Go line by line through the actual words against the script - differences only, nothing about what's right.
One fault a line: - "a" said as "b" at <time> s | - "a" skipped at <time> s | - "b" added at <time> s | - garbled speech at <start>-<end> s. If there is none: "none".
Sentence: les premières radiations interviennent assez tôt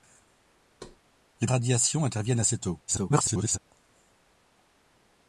- "premières" skipped at 1.5 s
- garbled speech at 2.9-3.6 s